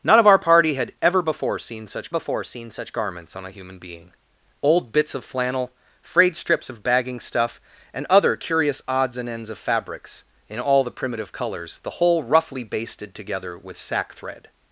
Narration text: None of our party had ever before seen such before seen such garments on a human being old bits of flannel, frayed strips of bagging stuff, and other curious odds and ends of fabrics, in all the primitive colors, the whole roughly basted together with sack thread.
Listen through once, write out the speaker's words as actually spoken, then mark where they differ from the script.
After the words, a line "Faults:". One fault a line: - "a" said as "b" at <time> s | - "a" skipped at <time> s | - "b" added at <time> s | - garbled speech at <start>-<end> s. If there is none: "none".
None of our party had ever before seen such before seen such garments on a human being old bits of flannel, frayed strips of bagging stuff, and other curious odds and ends of fabrics, in all the primitive colors, the whole roughly basted together with sack thread.
Faults:
none